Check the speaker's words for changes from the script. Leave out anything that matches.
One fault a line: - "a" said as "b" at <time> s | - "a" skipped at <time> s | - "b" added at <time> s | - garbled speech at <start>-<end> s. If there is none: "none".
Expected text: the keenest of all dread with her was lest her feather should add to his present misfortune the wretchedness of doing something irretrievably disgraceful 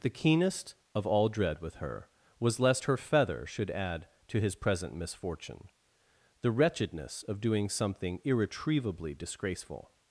none